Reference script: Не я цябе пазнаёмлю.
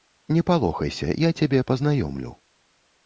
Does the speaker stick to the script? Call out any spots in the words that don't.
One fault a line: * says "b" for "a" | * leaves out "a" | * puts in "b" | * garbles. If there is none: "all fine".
* puts in "палохайся"